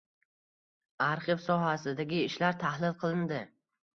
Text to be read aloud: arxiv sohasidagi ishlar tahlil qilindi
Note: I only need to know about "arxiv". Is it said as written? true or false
true